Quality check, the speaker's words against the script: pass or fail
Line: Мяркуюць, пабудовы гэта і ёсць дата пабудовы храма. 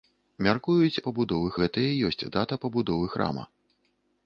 pass